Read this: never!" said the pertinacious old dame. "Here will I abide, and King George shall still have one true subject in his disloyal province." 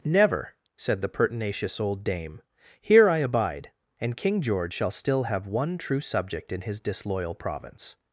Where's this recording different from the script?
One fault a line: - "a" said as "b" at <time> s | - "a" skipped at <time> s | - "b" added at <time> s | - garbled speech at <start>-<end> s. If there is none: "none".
- "will" skipped at 3.1 s